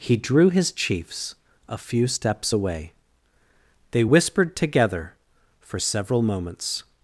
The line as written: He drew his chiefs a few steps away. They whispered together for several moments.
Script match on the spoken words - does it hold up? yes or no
yes